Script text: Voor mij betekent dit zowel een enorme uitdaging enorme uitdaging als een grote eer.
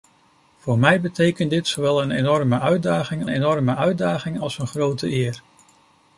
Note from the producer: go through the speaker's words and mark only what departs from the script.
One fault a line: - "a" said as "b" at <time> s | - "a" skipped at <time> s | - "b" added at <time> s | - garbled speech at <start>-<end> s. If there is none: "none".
none